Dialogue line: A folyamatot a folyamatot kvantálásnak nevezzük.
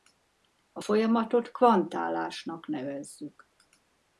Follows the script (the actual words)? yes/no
no